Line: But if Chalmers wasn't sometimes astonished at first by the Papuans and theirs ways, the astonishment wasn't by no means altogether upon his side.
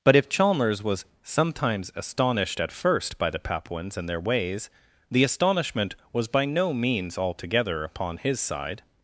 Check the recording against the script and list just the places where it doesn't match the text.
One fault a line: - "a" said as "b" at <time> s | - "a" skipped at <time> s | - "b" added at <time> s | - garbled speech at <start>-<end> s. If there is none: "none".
- "wasn't" said as "was" at 0.8 s
- "theirs" said as "their" at 4.1 s
- "wasn't" said as "was" at 6.1 s